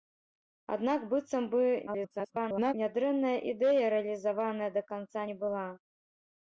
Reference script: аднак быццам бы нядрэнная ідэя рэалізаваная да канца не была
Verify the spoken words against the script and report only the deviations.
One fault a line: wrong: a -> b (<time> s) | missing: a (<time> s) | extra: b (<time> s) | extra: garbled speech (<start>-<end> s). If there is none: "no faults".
extra: garbled speech (1.9-2.7 s)